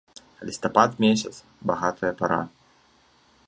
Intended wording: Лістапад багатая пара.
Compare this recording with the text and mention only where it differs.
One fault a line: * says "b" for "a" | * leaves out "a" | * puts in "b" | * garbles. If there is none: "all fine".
* puts in "месяц"